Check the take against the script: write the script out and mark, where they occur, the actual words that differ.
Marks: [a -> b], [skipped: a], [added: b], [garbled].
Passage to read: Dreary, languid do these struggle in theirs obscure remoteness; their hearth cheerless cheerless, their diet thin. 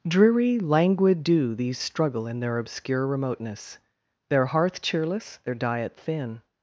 Dreary, languid do these struggle in [theirs -> their] obscure remoteness; their hearth cheerless [skipped: cheerless,] their diet thin.